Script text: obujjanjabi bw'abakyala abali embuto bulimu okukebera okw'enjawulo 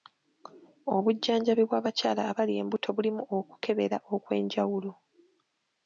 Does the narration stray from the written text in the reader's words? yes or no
no